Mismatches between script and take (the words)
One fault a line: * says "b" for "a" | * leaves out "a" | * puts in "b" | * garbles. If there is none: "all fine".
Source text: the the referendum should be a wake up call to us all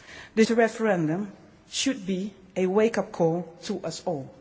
all fine